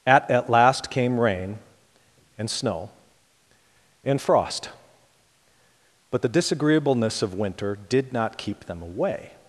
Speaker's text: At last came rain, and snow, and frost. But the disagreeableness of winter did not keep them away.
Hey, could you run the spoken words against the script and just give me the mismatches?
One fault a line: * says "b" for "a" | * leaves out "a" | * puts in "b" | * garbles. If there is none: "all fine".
* puts in "at"